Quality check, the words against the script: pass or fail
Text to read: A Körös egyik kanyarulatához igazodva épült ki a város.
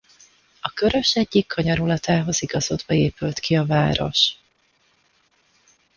pass